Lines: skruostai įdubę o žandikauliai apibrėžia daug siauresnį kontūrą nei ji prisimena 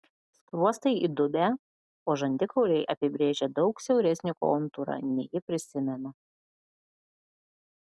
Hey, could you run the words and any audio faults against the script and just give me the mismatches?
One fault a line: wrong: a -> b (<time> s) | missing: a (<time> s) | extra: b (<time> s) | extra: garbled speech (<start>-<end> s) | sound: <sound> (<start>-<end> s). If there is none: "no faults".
no faults